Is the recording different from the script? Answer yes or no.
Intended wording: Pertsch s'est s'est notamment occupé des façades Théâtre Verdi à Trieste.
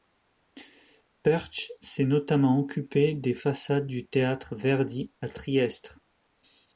yes